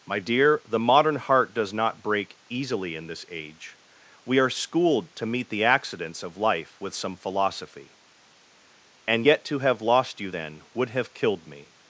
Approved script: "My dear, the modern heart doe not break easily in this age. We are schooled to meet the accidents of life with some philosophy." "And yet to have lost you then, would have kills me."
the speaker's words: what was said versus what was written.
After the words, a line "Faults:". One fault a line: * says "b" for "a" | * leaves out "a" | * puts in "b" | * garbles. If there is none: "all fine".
"My dear, the modern heart does not break easily in this age. We are schooled to meet the accidents of life with some philosophy." "And yet to have lost you then, would have killed me."
Faults:
* says "does" for "doe"
* says "killed" for "kills"